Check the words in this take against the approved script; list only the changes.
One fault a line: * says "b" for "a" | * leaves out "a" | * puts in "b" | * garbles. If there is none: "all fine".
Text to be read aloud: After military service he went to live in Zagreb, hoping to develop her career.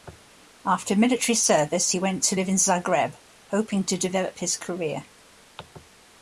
* says "his" for "her"